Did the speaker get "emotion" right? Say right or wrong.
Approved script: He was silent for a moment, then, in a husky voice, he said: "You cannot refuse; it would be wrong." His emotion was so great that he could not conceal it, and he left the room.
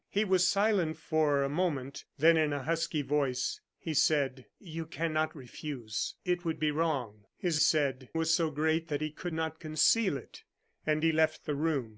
wrong